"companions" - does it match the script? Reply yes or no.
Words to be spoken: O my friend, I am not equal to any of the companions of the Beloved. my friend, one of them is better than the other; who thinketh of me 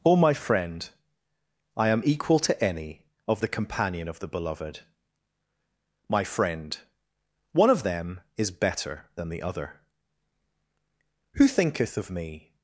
no